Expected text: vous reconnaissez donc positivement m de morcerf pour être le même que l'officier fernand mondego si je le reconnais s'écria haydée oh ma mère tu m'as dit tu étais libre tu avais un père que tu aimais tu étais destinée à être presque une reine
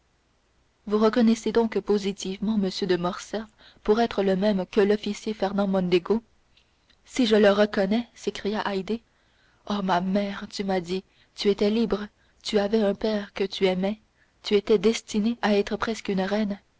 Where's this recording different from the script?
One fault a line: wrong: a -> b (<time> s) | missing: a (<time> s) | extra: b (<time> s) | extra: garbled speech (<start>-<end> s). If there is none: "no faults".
no faults